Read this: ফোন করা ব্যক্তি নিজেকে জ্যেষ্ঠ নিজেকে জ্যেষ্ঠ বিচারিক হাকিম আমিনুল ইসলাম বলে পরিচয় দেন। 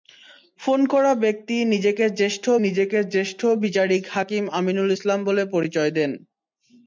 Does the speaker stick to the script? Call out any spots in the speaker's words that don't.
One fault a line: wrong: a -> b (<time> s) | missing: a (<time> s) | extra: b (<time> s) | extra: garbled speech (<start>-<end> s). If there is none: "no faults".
no faults